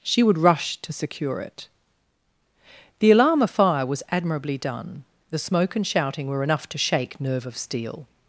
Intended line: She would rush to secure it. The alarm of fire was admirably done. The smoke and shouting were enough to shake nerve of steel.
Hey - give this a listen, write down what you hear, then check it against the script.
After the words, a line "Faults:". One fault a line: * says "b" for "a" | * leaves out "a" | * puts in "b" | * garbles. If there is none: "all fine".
She would rush to secure it. The alarm of fire was admirably done. The smoke and shouting were enough to shake nerve of steel.
Faults:
all fine